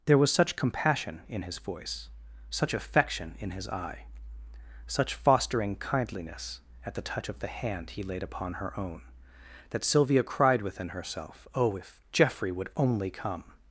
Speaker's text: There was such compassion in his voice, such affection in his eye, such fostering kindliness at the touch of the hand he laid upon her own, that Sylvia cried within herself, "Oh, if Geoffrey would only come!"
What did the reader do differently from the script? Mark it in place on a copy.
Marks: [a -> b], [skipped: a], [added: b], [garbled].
There was such compassion in his voice, such affection in his eye, such fostering kindliness at the touch of the hand he laid upon her own, that Sylvia cried within herself, "Oh, if Geoffrey would only come!"